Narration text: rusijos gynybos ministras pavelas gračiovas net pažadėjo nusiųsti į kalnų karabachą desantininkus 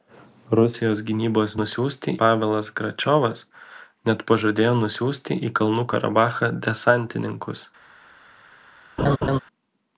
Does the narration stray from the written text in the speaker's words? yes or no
yes